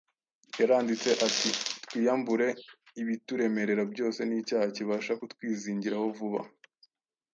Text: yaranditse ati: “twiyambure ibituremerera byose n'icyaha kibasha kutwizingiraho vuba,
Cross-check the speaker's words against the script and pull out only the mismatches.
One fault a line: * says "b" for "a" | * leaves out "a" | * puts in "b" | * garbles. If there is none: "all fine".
all fine